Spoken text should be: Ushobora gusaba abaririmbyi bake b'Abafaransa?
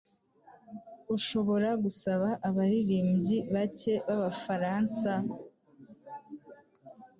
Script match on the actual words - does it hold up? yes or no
yes